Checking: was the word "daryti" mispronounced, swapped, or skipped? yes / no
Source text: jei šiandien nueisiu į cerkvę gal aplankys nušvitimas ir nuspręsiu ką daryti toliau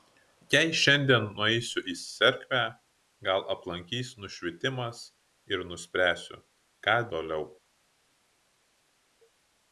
yes